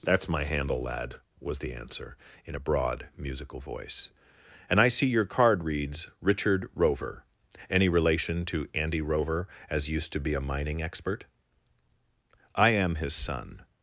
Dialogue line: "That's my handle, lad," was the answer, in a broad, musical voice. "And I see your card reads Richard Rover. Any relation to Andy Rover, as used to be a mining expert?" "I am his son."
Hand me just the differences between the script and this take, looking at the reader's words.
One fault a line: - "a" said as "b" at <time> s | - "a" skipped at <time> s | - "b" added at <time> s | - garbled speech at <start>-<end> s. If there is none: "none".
none